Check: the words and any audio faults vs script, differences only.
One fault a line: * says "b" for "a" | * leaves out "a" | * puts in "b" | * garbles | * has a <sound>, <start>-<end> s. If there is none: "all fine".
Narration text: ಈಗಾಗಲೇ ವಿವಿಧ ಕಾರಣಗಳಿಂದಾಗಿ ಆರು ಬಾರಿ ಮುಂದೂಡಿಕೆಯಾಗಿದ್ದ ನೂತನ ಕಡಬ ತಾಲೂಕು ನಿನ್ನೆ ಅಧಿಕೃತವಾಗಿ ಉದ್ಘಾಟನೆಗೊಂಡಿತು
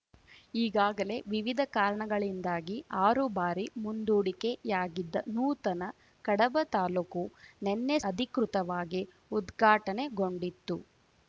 all fine